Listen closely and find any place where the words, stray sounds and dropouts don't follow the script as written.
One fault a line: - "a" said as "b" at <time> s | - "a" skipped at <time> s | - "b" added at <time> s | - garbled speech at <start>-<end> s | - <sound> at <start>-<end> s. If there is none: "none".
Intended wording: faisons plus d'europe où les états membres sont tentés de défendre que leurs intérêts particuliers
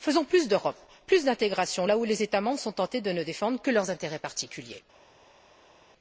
- "plus d'intégration là" added at 1.1 s
- "ne" added at 3.1 s